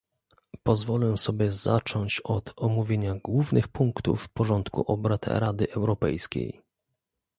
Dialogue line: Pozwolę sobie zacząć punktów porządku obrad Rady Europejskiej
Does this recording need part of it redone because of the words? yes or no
yes